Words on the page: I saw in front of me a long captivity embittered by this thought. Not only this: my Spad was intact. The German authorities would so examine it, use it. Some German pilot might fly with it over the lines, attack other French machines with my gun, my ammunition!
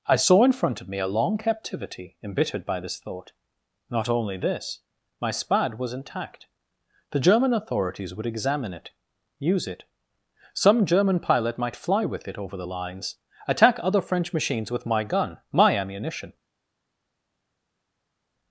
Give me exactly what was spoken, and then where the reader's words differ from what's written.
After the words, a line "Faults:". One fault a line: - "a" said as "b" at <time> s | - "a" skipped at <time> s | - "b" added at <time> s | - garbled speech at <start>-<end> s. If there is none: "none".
I saw in front of me a long captivity embittered by this thought. Not only this: my Spad was intact. The German authorities would examine it, use it. Some German pilot might fly with it over the lines, attack other French machines with my gun, my ammunition!
Faults:
- "so" skipped at 8.2 s